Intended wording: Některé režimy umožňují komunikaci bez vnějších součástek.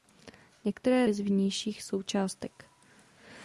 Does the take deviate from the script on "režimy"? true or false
true